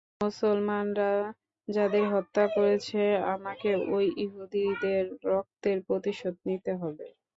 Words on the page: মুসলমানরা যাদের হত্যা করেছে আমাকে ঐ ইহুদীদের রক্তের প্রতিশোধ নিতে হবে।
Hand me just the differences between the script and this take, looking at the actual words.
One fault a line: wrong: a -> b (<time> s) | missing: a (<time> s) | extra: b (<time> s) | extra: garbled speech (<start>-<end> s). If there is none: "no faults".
no faults